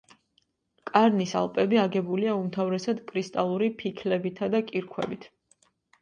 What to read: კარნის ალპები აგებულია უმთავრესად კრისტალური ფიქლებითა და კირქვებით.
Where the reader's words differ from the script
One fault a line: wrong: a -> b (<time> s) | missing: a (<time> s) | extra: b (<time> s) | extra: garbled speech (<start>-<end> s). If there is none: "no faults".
no faults